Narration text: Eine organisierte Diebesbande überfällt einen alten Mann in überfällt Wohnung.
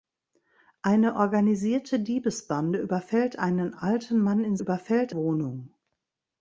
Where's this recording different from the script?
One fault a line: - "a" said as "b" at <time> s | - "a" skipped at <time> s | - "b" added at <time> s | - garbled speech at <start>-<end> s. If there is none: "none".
none